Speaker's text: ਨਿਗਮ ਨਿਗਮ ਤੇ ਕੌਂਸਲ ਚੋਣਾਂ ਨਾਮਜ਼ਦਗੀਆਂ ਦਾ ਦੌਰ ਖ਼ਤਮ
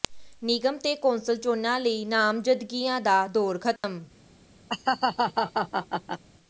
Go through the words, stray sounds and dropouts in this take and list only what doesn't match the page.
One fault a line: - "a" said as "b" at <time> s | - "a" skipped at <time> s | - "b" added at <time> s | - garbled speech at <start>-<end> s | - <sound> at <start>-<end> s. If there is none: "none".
- "ਨਿਗਮ" skipped at 0.8 s
- "ਲਈ" added at 1.8 s
- dropout at 3.8-3.8 s
- laugh at 4.7-6.2 s